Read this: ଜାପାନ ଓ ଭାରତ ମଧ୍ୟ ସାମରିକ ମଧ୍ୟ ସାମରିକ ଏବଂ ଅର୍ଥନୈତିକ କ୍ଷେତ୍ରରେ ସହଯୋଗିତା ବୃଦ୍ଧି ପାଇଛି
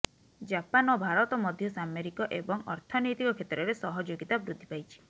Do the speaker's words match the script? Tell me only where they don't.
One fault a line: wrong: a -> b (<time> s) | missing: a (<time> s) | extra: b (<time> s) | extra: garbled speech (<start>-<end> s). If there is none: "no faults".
missing: ମଧ୍ୟ ସାମରିକ (2.3 s)